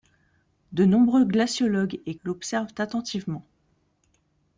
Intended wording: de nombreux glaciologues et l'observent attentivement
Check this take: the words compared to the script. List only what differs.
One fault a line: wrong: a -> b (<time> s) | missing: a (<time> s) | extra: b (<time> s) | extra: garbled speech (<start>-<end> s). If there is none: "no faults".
no faults